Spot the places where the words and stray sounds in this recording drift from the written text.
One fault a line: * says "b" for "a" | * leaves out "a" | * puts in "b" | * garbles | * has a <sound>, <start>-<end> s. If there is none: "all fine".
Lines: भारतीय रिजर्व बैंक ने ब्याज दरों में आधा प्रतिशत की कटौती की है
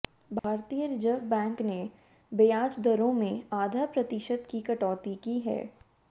* has a dropout, 0.4-0.4 s